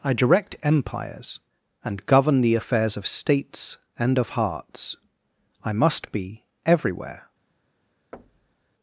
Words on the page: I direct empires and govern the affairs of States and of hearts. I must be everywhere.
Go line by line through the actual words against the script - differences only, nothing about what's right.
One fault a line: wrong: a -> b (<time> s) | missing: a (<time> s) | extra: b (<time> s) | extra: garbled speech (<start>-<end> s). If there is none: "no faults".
no faults